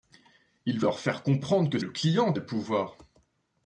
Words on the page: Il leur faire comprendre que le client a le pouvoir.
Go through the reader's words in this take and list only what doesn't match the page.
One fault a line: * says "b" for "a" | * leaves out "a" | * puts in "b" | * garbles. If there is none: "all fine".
all fine